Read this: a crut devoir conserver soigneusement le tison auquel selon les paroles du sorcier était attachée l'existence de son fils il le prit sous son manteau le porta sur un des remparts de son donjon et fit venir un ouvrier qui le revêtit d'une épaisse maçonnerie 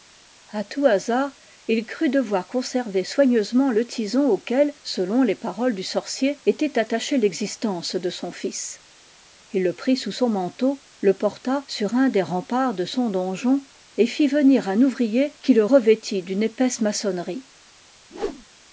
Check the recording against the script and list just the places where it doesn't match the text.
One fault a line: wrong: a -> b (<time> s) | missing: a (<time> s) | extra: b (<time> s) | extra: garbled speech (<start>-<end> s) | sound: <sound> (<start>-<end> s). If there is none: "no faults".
extra: tout hasard il (0.6 s)
sound: whoosh (18.1-18.5 s)